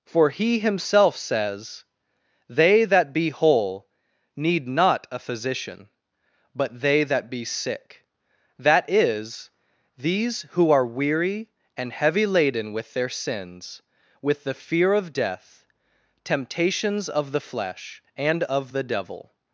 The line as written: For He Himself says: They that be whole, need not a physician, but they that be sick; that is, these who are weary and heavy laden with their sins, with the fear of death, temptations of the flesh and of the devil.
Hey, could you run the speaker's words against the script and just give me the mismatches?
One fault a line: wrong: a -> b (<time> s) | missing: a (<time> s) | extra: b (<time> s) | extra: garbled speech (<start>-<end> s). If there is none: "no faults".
no faults